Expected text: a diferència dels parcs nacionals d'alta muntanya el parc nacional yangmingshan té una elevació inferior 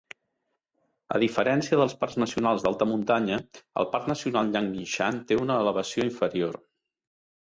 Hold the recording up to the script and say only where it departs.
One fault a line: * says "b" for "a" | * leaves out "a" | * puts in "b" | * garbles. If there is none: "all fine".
all fine